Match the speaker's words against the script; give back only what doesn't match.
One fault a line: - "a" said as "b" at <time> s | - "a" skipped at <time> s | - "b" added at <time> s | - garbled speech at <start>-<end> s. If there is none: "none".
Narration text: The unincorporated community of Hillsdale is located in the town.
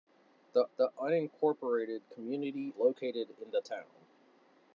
- "the" added at 0.8 s
- "of Hillsdale is" skipped at 2.7 s